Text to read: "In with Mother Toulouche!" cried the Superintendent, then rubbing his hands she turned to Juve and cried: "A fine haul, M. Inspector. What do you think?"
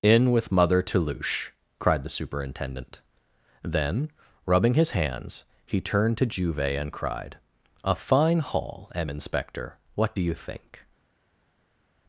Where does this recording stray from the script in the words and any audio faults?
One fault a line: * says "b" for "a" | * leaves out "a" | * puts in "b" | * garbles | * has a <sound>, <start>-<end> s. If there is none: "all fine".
* says "he" for "she"